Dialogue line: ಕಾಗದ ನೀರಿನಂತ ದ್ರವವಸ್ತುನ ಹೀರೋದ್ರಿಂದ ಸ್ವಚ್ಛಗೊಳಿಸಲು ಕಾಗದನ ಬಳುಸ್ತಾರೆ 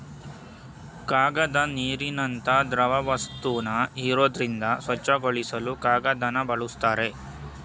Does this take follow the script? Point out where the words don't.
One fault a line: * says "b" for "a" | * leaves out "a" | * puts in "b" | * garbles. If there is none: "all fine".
all fine